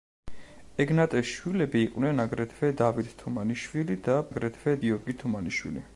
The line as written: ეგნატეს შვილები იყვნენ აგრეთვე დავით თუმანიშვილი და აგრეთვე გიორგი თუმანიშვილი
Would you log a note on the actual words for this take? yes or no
no